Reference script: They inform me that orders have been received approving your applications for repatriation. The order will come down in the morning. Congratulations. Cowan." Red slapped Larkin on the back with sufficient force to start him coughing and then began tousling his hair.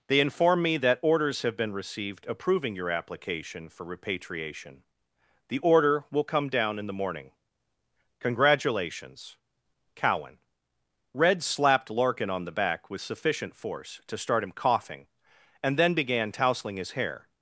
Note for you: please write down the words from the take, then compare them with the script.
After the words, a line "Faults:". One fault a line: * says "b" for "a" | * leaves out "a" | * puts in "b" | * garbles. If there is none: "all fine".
They inform me that orders have been received approving your application for repatriation. The order will come down in the morning. Congratulations. Cowan." Red slapped Larkin on the back with sufficient force to start him coughing and then began tousling his hair.
Faults:
* says "application" for "applications"